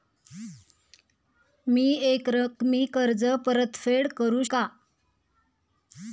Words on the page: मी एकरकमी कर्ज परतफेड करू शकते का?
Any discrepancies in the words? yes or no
yes